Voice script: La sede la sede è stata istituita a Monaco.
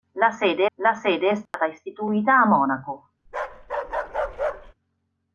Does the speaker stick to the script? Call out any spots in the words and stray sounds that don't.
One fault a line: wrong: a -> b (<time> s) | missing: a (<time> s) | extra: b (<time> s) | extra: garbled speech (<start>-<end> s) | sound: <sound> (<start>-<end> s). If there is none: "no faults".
sound: dropout (1.5-1.5 s)
sound: bark (3.3-4.7 s)